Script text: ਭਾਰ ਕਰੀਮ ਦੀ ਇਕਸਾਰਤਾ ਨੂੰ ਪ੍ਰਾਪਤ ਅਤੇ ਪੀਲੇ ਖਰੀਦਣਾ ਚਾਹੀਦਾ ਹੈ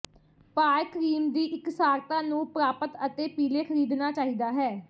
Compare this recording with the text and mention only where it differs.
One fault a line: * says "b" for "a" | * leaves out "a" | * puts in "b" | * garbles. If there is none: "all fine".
all fine